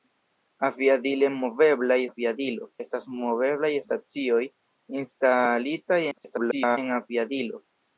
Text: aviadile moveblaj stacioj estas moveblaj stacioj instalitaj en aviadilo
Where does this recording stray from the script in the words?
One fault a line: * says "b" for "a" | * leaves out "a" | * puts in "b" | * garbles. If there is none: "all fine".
* says "aviadilo" for "stacioj"
* garbles